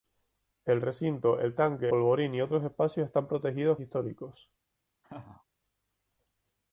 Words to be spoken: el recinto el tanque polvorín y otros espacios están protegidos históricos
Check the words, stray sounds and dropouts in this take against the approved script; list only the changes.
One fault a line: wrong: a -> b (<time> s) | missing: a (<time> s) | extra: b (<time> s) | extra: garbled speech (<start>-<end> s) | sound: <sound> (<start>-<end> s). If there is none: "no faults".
sound: laugh (5.0-5.4 s)